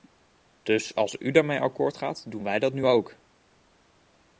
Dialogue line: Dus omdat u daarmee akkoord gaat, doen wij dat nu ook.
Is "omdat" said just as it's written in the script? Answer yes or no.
no